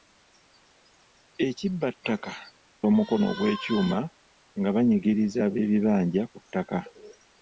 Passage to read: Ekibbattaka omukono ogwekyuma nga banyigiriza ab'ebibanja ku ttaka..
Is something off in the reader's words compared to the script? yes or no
no